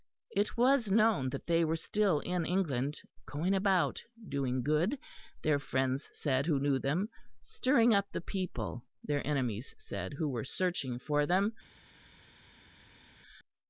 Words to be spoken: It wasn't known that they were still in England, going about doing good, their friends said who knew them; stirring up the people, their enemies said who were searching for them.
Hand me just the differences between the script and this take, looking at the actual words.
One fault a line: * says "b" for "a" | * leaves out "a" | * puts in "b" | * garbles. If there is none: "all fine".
* says "was" for "wasn't"